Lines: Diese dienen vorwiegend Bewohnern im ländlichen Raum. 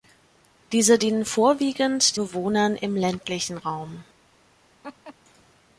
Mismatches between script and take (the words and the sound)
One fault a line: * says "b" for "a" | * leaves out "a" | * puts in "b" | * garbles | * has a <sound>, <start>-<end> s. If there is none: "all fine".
* has a laugh, 4.8-5.1 s